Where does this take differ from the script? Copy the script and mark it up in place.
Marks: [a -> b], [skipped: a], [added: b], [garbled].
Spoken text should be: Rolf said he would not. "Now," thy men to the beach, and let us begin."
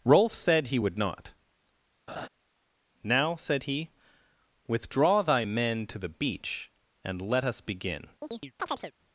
Rolf said he would not. "Now," [added: said he withdraw] thy men to the beach, and let us begin."